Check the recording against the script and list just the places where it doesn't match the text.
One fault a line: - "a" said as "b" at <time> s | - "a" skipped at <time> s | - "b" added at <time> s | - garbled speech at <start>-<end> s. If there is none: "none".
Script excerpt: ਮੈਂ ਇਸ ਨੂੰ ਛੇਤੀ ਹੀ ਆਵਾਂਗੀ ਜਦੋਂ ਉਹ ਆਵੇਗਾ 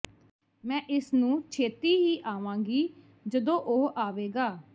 none